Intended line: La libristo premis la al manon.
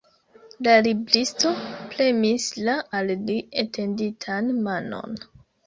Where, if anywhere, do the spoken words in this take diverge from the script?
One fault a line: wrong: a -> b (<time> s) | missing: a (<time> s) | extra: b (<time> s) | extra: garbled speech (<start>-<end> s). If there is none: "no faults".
extra: li etenditan (3.3 s)